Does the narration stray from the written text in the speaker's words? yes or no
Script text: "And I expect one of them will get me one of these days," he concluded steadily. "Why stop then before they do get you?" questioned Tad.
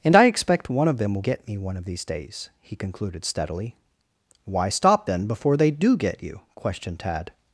no